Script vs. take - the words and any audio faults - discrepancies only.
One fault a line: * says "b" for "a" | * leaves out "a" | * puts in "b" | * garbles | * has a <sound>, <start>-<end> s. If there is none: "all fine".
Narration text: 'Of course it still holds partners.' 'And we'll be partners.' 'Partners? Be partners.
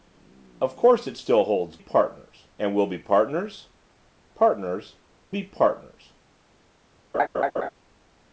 * has a laugh, 7.1-7.7 s